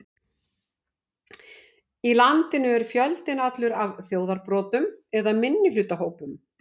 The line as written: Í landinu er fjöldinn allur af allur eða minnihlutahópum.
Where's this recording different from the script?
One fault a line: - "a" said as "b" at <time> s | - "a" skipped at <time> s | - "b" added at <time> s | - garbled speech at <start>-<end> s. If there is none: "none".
- "allur" said as "þjóðarbrotum" at 4.1 s